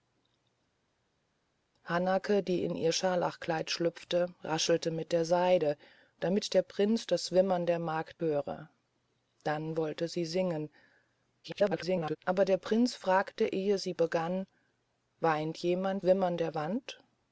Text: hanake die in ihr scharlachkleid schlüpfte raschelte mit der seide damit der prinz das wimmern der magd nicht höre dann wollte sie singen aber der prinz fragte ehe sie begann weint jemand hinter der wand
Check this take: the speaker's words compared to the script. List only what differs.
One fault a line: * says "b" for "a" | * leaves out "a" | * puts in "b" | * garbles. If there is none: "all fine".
* leaves out "nicht"
* garbles
* says "wimmern" for "hinter"